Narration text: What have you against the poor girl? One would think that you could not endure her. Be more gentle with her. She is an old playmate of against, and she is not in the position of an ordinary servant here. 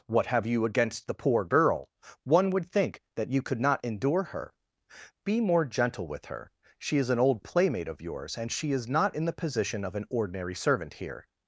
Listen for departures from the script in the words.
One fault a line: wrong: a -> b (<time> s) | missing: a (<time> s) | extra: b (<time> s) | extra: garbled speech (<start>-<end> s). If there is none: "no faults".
wrong: against -> yours (8.0 s)